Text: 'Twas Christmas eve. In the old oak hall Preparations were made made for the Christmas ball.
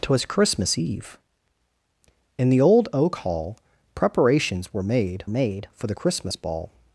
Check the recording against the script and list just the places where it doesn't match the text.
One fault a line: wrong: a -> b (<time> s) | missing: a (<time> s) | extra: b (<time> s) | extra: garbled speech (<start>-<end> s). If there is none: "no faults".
no faults